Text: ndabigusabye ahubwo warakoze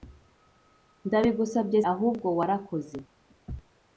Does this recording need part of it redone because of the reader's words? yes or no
no